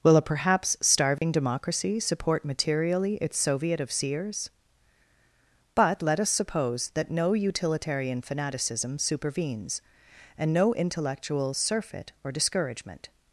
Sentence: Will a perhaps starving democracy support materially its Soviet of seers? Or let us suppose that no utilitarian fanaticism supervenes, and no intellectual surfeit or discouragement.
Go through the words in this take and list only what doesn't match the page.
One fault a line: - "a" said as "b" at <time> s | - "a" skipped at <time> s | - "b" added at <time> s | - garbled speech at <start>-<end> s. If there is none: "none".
- "Or" said as "But" at 5.8 s